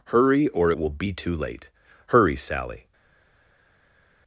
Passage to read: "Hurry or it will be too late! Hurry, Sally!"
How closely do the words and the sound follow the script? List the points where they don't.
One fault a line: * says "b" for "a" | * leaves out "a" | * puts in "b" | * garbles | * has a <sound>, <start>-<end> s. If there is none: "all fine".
all fine